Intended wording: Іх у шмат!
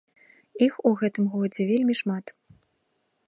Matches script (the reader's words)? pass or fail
fail